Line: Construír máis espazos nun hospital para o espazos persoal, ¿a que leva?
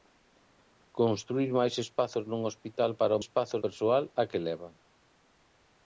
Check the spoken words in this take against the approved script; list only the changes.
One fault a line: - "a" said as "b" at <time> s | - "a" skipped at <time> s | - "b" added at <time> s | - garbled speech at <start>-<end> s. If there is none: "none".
none